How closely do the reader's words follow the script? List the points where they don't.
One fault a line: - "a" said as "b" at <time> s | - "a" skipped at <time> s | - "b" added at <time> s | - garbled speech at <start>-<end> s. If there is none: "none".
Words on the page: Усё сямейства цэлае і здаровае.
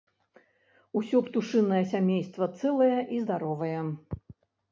- "птушынае" added at 1.3 s